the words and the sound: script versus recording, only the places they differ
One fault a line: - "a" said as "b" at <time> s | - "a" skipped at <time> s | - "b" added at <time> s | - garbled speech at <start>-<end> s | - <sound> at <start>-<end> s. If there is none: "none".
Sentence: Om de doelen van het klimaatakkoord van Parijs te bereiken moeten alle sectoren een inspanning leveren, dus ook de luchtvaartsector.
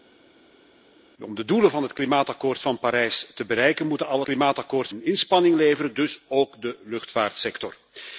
- "sectoren" said as "klimaatakkoord" at 4.2 s